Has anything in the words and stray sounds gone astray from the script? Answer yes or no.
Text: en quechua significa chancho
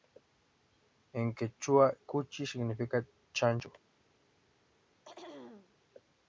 yes